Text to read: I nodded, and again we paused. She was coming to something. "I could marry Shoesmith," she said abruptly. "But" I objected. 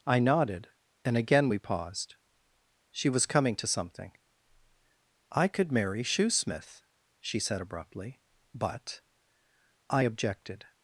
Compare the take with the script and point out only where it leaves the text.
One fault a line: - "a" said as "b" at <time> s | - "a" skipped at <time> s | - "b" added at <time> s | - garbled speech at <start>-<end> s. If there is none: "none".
none